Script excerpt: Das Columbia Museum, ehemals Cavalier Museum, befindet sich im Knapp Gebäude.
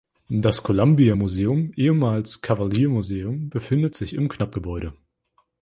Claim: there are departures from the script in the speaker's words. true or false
false